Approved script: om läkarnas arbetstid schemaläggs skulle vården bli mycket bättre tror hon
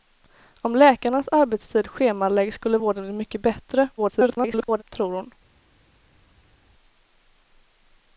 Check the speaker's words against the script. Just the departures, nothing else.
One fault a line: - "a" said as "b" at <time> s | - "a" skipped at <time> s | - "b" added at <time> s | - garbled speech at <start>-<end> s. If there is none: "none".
- garbled speech at 4.0-4.8 s